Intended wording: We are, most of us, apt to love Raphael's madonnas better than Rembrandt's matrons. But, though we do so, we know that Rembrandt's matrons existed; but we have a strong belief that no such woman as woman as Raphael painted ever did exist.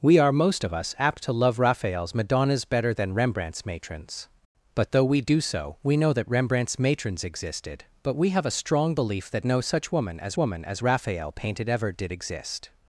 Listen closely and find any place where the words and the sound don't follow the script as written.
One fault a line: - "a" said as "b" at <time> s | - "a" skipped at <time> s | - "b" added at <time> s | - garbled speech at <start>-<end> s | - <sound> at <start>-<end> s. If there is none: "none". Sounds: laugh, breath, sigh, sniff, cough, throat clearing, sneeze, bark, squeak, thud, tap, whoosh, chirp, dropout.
none